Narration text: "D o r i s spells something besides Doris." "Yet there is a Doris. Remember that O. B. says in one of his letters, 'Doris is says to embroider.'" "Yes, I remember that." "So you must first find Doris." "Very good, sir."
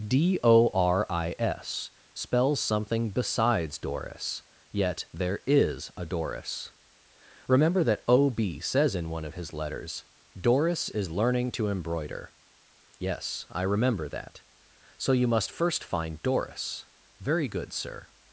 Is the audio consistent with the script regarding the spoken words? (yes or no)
no